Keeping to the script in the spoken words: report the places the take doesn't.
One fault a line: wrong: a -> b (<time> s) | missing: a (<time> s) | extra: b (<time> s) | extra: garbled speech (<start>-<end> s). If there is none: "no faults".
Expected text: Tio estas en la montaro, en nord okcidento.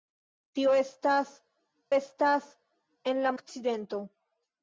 extra: estas (1.9 s)
missing: montaro en nord (3.3 s)